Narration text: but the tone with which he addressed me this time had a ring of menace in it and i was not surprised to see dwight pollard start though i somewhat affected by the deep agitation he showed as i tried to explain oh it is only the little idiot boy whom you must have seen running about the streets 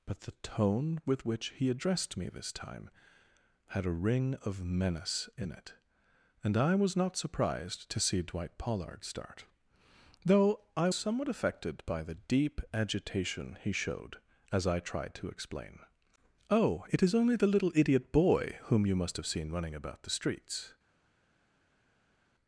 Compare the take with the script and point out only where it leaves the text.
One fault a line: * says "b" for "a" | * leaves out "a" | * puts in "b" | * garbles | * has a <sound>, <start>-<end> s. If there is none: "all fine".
all fine